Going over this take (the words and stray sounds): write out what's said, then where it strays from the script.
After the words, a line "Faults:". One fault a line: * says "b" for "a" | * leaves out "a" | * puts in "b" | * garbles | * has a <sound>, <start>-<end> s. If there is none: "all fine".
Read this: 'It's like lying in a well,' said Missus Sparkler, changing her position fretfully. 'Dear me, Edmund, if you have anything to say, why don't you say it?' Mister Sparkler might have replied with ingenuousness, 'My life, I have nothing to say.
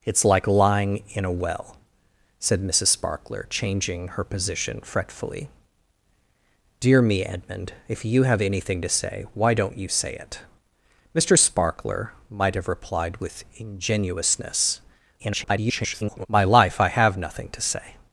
'It's like lying in a well,' said Missus Sparkler, changing her position fretfully. 'Dear me, Edmund, if you have anything to say, why don't you say it?' Mister Sparkler might have replied with ingenuousness, [garbled] 'My life, I have nothing to say.
Faults:
* garbles